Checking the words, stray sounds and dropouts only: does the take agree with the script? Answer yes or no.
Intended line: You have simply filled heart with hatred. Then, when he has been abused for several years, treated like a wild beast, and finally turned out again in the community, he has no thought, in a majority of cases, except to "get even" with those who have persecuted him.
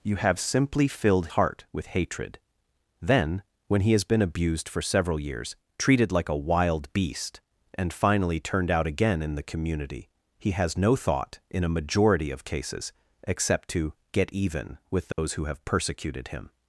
no